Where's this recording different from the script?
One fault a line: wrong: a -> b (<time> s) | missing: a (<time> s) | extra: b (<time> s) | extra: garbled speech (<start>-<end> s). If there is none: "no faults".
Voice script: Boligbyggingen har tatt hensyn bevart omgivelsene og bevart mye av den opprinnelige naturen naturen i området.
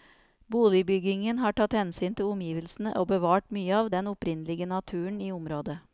wrong: bevart -> til (2.2 s)
missing: naturen (5.2 s)